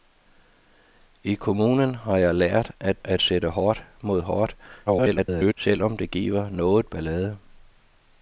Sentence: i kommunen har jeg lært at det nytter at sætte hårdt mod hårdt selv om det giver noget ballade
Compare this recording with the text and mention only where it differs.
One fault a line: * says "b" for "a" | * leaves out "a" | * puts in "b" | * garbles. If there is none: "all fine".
* leaves out "det nytter"
* garbles